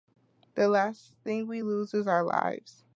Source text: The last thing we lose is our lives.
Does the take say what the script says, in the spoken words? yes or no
yes